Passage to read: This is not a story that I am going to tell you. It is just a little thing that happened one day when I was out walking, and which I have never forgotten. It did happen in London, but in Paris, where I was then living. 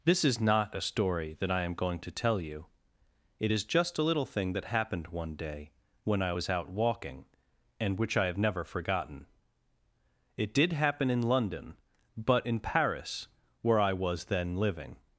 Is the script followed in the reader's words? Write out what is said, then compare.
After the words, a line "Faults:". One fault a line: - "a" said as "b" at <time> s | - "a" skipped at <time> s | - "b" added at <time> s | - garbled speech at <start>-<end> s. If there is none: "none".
This is not a story that I am going to tell you. It is just a little thing that happened one day when I was out walking, and which I have never forgotten. It did happen in London, but in Paris, where I was then living.
Faults:
none